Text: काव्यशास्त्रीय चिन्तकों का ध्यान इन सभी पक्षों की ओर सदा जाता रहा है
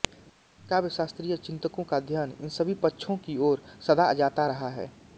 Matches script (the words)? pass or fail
pass